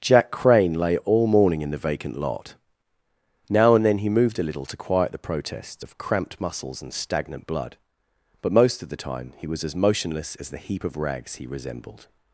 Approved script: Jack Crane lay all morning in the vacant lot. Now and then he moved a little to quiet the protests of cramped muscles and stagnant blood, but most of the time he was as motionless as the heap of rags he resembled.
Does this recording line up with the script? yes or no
yes